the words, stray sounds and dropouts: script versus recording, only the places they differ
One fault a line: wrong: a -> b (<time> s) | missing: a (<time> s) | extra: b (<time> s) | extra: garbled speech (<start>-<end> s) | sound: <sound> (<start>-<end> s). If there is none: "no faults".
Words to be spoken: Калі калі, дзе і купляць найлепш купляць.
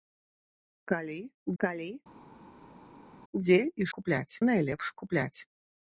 no faults